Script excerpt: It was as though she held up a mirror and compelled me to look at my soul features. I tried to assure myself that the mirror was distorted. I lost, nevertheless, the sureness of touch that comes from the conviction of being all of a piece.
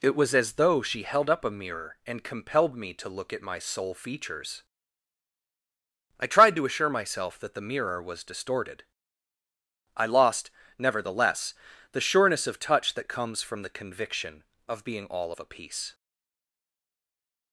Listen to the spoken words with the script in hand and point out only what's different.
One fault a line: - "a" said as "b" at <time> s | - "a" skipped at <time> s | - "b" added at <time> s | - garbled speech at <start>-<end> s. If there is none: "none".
none